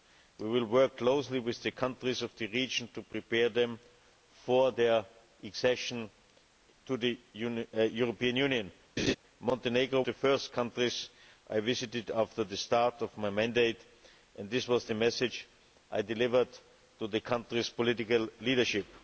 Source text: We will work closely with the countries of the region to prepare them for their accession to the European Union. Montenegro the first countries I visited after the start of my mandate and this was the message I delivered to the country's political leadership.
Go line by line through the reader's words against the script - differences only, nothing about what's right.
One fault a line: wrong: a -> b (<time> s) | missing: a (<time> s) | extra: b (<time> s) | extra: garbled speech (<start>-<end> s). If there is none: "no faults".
no faults